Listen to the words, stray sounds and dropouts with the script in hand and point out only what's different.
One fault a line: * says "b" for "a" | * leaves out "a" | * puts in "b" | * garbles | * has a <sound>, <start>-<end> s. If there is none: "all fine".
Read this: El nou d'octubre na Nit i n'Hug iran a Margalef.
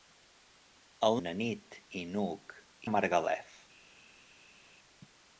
* leaves out "nou d'octubre"
* leaves out "iran"